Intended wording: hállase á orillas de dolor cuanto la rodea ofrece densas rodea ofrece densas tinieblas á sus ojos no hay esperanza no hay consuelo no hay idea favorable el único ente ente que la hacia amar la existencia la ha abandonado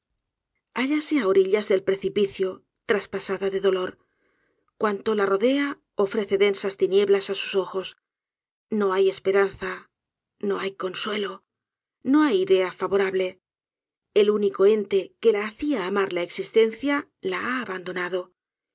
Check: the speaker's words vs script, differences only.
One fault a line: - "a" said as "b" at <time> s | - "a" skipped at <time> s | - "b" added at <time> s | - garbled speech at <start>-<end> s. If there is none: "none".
- "del precipicio traspasada" added at 1.7 s
- "rodea ofrece densas" skipped at 6.8 s
- "ente" skipped at 15.0 s